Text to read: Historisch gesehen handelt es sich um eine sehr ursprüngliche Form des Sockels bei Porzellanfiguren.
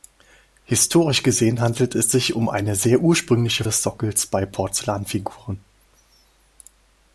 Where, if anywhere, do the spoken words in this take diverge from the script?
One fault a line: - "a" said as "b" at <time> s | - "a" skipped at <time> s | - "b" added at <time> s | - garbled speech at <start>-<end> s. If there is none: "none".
- "Form" skipped at 3.6 s